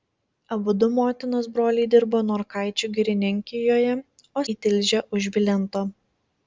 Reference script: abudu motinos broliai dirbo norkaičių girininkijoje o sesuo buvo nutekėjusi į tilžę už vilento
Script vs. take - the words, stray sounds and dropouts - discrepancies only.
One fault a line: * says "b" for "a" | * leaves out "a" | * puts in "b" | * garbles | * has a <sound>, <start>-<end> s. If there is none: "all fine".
* leaves out "sesuo buvo nutekėjusi"